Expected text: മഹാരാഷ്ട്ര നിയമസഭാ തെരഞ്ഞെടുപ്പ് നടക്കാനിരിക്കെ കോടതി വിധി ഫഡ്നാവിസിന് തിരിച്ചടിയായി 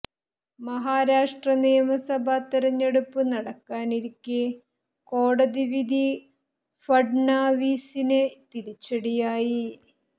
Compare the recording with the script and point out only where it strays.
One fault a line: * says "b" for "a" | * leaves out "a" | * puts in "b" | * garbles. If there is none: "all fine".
all fine